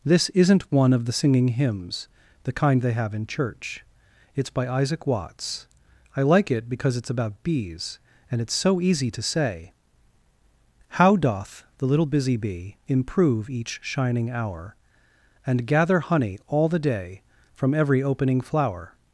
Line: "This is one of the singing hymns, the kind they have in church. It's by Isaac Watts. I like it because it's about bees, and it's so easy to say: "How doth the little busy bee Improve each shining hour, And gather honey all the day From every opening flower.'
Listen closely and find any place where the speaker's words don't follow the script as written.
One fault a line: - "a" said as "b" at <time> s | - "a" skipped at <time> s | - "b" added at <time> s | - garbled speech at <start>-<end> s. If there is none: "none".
- "is" said as "isn't" at 0.3 s